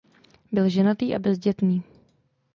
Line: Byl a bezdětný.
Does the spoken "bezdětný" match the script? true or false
true